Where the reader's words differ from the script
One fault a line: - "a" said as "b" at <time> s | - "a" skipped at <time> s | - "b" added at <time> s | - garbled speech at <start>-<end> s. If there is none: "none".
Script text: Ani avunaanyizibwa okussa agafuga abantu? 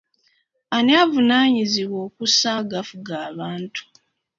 none